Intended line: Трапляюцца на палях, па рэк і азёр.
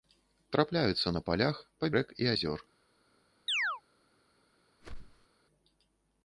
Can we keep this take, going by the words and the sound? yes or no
no